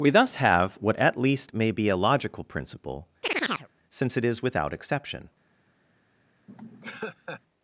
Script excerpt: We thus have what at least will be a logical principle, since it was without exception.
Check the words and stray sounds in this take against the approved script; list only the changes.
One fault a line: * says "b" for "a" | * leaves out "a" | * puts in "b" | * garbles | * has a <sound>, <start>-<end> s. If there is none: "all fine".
* says "may" for "will"
* has a chirp, 3.2-3.7 s
* says "is" for "was"
* has a laugh, 6.5-7.4 s